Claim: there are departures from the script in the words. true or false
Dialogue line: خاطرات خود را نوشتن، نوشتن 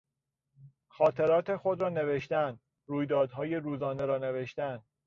true